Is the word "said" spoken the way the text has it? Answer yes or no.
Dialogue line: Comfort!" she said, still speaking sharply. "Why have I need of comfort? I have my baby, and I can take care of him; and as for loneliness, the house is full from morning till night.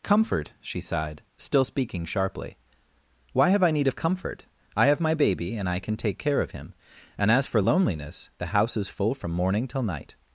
no